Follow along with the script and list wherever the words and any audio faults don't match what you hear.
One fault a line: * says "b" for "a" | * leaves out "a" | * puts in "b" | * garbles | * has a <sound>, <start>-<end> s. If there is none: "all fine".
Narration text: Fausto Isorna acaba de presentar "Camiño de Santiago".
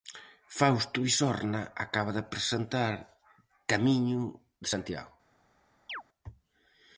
* has a chirp, 5.9-6.0 s